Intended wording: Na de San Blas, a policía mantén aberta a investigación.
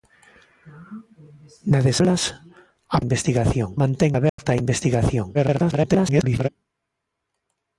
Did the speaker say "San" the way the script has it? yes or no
no